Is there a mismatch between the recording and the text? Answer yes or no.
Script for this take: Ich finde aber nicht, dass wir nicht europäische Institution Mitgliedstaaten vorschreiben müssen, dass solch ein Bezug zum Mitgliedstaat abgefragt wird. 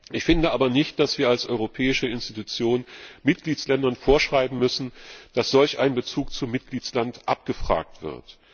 yes